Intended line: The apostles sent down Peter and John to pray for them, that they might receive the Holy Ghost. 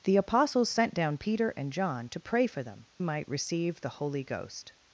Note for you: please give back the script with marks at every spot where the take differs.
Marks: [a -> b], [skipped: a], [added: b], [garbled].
The apostles sent down Peter and John to pray for them, [skipped: that they] might receive the Holy Ghost.